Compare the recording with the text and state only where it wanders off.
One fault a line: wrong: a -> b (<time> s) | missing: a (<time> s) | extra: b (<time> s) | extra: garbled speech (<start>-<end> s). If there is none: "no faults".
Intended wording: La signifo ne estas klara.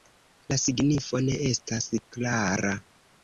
no faults